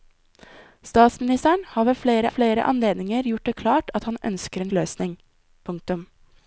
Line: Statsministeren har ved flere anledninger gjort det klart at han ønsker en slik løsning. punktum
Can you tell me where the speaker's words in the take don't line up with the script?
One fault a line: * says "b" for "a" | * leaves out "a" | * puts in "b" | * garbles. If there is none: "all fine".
* puts in "flere"
* leaves out "slik"